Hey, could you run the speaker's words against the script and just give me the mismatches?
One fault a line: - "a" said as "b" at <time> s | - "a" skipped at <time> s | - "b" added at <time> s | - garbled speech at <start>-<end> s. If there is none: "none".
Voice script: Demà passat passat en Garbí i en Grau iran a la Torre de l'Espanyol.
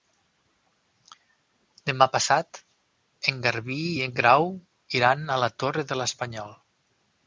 - "passat" skipped at 2.6 s